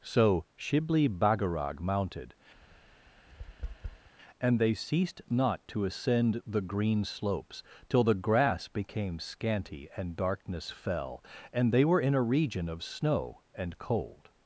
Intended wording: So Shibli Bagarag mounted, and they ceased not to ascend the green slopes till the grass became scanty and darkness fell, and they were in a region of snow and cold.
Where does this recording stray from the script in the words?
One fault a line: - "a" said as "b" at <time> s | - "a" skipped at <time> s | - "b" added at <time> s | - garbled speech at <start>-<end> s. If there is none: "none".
none